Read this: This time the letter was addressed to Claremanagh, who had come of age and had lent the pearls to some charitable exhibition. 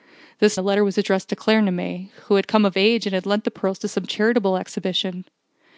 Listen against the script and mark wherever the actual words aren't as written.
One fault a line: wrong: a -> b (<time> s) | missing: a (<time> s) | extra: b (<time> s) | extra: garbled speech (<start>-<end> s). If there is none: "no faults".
missing: time (0.6 s)